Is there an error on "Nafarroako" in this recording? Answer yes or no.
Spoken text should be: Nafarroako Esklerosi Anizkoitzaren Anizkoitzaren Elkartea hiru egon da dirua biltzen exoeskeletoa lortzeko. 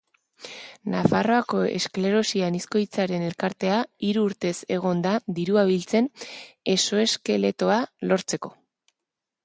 no